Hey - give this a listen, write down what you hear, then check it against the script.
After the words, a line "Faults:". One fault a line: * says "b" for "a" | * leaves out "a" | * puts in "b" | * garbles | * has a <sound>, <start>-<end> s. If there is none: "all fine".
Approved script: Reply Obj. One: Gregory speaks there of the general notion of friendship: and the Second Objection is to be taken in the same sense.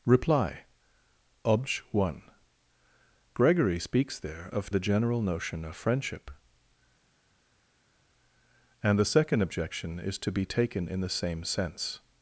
Reply Obj. One: Gregory speaks there of the general notion of friendship: and the Second Objection is to be taken in the same sense.
Faults:
all fine